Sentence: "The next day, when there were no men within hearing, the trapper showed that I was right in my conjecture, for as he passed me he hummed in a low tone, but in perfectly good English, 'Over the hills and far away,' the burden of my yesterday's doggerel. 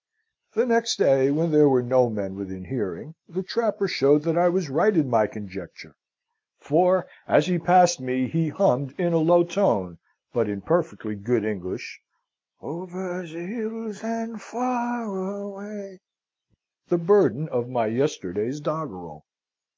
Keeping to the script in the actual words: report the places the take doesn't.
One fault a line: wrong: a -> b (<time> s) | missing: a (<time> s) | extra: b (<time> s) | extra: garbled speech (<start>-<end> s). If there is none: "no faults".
no faults